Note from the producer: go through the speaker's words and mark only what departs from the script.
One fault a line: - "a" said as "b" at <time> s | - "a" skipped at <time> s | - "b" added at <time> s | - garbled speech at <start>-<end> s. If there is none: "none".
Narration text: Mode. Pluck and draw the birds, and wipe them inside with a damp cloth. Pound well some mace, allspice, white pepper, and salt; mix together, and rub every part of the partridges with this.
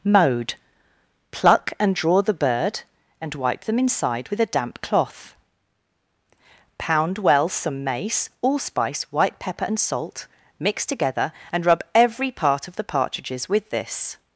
- "birds" said as "bird" at 2.3 s